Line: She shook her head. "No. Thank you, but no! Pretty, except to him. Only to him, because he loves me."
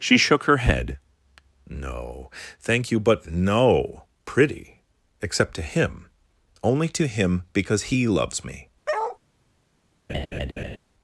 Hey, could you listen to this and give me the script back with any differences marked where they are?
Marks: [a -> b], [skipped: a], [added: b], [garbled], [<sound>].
She shook her head. "No. Thank you, but no! Pretty, except to him. Only to him, because he loves me." [bark] [laugh]